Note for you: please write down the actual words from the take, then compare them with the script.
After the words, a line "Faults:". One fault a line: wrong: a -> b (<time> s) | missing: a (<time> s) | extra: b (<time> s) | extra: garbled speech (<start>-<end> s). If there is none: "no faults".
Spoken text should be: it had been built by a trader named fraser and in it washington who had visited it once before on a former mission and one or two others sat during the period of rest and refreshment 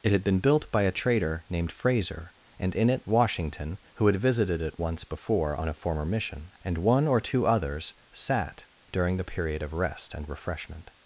it had been built by a trader named fraser and in it washington who had visited it once before on a former mission and one or two others sat during the period of rest and refreshment
Faults:
no faults